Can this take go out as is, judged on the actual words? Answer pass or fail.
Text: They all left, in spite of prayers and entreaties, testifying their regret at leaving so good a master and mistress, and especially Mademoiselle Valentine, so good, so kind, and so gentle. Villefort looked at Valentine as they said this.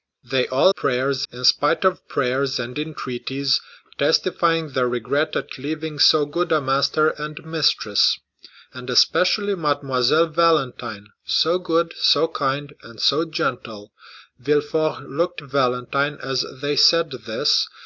fail